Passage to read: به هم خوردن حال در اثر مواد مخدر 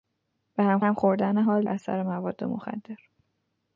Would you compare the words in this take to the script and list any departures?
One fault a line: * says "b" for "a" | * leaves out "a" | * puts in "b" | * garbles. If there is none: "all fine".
* puts in "هم"
* leaves out "در"